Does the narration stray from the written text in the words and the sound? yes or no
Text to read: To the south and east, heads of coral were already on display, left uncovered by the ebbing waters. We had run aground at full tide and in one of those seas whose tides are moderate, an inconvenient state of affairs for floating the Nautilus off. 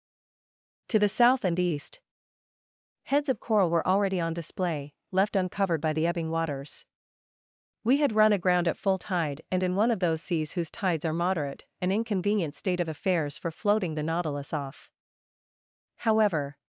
yes